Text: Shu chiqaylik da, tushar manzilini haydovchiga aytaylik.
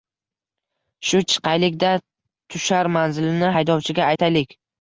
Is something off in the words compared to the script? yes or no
no